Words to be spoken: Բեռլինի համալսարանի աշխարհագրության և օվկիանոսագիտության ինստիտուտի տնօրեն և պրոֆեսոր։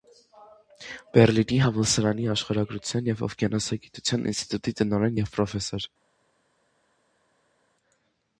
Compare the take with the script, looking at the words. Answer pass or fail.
pass